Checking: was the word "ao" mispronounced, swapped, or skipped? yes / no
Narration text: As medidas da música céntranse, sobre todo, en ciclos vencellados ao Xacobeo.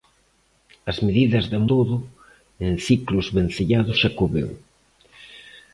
yes